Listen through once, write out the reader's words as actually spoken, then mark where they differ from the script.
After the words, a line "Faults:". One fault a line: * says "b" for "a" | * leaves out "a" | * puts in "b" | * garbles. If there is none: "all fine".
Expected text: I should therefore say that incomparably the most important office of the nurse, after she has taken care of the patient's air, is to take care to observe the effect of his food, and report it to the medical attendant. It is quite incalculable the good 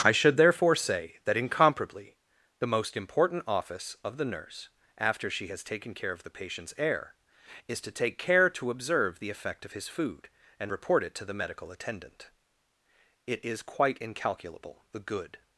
I should therefore say that incomparably the most important office of the nurse, after she has taken care of the patient's air, is to take care to observe the effect of his food, and report it to the medical attendant. It is quite incalculable the good
Faults:
all fine